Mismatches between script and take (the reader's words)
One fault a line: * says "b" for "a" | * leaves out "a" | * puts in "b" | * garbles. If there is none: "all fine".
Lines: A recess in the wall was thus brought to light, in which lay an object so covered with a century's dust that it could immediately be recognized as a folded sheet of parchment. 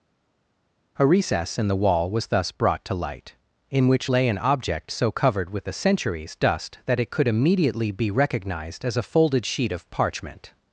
all fine